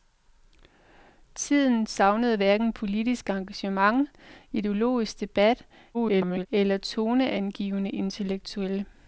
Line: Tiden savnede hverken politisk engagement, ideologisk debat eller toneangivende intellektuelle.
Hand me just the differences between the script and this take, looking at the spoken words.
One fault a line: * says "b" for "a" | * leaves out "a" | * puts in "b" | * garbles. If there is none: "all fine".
* garbles